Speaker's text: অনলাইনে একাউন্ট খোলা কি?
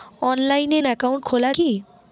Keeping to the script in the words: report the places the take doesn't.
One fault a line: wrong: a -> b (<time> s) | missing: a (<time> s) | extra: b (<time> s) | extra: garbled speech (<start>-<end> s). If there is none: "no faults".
no faults